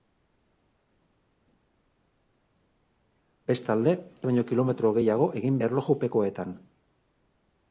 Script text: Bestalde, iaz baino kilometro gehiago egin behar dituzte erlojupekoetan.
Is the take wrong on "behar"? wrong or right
wrong